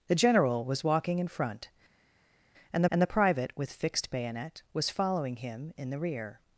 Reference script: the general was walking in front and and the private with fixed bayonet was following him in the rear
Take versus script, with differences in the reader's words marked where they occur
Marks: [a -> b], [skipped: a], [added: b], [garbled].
the general was walking in front and and the private with fixed bayonet was following him in the rear